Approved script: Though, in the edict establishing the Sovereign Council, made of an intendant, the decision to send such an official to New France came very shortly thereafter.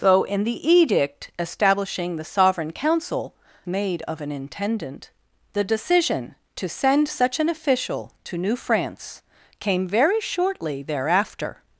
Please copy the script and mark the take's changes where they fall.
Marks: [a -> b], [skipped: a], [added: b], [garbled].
Though, in the edict establishing the Sovereign Council, made of an intendant, the decision to send such an official to New France came very shortly thereafter.